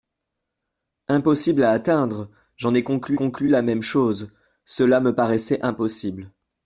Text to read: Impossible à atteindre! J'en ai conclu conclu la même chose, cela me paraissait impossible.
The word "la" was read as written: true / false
true